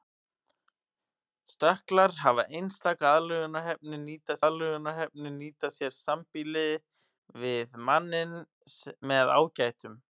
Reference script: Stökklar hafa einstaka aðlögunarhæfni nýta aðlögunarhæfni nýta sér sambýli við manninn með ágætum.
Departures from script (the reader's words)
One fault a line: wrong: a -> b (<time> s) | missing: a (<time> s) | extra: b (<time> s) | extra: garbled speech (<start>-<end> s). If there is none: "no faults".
no faults